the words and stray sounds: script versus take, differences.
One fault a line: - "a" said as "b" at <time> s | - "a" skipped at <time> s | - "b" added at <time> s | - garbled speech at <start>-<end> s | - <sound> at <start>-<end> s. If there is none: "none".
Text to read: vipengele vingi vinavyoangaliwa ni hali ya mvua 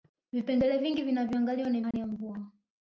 - dropout at 1.9-1.9 s